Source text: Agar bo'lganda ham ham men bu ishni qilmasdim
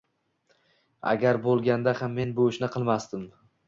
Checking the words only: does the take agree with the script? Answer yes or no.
no